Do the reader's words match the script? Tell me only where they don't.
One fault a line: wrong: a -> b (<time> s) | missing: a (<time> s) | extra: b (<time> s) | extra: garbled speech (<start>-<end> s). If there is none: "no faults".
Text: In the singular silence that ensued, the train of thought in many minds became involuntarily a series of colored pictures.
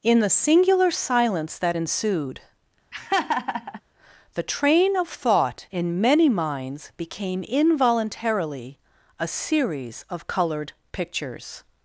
no faults